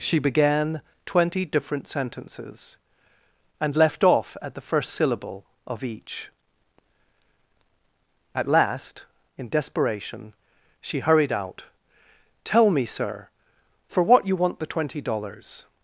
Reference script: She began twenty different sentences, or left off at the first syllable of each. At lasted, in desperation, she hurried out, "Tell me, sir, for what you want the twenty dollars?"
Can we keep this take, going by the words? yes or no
no